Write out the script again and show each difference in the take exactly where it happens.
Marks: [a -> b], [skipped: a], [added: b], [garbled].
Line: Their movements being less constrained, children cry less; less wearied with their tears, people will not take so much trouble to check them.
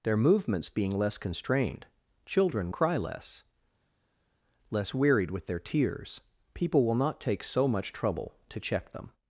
Their movements being less constrained, children cry less; less wearied with their tears, people will not take so much trouble to check them.